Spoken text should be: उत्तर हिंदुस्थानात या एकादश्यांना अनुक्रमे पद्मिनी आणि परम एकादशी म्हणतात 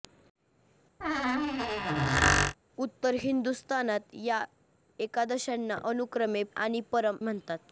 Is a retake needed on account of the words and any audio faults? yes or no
yes